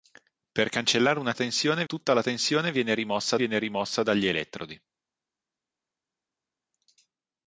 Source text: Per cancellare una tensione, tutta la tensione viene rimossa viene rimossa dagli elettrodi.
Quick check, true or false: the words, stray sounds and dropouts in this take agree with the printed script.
true